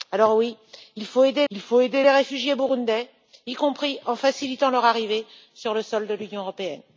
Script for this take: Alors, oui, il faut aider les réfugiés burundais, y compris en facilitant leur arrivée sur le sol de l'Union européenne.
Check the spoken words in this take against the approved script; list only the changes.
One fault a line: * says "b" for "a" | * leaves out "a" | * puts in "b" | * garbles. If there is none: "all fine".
* puts in "il faut aider"